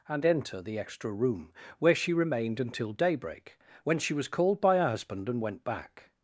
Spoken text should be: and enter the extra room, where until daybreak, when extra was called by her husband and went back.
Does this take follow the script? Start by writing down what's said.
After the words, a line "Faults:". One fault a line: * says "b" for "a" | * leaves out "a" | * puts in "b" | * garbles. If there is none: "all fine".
and enter the extra room, where she remained until daybreak, when she was called by her husband and went back.
Faults:
* puts in "she remained"
* says "she" for "extra"